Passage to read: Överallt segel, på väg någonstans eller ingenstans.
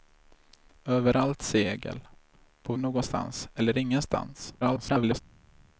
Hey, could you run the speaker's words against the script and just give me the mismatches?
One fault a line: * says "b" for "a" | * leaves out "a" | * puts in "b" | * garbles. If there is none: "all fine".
* leaves out "väg"
* garbles